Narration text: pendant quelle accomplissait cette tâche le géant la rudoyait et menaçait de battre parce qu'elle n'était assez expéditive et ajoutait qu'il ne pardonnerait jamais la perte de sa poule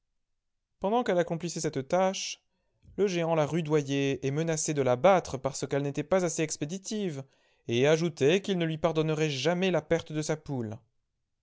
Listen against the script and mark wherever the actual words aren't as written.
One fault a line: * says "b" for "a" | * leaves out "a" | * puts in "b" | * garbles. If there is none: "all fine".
* puts in "la"
* puts in "pas"
* puts in "lui"